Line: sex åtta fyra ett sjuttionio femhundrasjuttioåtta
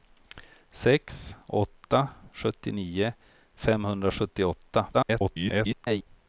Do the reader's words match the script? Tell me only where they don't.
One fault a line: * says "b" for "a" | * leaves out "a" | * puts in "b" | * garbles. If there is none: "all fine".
* leaves out "fyra ett"
* garbles